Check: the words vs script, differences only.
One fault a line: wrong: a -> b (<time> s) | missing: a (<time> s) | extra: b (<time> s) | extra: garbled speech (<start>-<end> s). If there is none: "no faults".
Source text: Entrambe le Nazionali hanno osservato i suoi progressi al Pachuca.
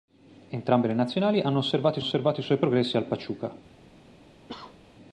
extra: osservato (2.0 s)